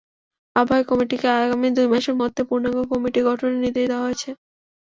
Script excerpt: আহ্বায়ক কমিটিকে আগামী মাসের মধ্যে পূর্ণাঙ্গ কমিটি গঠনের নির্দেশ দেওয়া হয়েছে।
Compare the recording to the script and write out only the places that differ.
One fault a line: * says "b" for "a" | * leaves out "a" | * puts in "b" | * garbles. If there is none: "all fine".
* puts in "দুই"